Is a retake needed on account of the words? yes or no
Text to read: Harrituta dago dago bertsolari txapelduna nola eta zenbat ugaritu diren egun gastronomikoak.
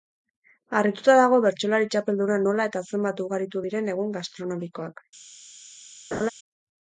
yes